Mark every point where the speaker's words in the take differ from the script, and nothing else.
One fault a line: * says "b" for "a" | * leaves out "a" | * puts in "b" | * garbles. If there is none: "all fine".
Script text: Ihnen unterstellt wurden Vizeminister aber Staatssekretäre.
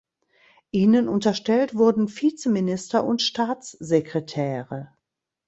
* says "und" for "aber"